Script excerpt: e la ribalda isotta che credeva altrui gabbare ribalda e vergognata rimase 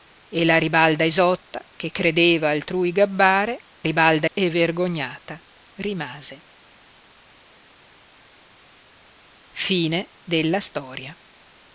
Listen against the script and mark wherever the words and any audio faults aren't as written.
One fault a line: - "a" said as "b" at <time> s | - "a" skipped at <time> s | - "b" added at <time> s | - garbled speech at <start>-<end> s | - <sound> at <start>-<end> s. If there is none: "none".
none